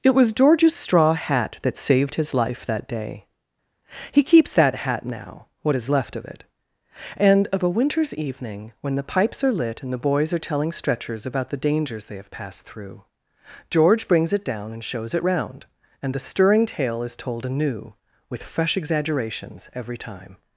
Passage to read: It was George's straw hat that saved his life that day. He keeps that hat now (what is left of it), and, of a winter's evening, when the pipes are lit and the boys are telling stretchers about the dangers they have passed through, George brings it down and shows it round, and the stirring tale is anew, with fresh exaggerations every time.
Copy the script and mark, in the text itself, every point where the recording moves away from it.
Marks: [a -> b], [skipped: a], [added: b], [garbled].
It was George's straw hat that saved his life that day. He keeps that hat now (what is left of it), and, of a winter's evening, when the pipes are lit and the boys are telling stretchers about the dangers they have passed through, George brings it down and shows it round, and the stirring tale is [added: told] anew, with fresh exaggerations every time.